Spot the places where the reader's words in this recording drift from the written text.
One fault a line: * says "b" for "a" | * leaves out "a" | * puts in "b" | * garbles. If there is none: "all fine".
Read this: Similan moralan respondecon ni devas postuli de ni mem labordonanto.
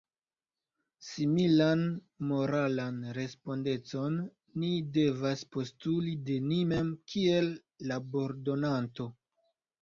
* puts in "kiel"